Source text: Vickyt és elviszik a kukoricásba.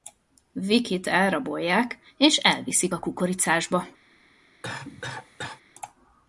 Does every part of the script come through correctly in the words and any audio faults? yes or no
no